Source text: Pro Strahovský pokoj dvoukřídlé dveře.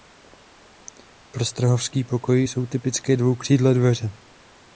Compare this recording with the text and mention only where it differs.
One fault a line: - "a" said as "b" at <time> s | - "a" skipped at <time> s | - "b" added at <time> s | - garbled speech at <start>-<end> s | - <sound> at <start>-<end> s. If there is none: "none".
- "jsou typické" added at 2.4 s